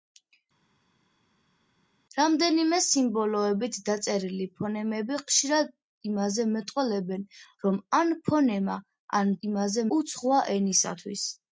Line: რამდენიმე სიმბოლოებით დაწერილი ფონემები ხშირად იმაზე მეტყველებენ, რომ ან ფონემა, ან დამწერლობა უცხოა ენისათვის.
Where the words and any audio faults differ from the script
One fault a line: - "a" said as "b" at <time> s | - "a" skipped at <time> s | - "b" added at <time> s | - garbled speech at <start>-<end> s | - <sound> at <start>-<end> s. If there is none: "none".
- "დამწერლობა" said as "იმაზე" at 9.5 s